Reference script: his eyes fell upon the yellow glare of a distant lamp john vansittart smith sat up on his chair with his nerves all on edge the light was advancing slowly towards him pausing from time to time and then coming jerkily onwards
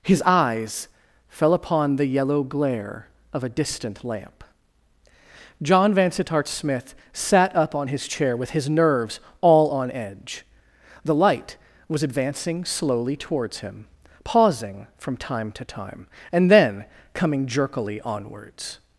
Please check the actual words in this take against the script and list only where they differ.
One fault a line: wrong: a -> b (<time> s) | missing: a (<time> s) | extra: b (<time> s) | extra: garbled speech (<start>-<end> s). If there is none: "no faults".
no faults